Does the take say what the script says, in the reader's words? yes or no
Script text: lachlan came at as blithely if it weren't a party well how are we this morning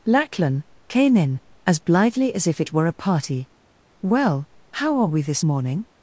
no